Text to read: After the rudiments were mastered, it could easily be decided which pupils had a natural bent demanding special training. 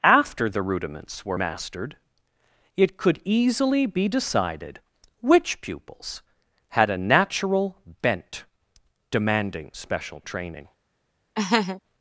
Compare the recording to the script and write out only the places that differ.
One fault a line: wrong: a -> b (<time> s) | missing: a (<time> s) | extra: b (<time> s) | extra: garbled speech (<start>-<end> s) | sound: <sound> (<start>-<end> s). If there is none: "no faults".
sound: laugh (11.3-11.8 s)